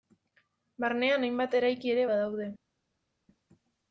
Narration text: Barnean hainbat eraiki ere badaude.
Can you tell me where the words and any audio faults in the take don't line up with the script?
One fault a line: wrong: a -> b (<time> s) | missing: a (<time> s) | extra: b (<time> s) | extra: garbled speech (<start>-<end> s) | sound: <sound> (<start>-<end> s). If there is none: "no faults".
no faults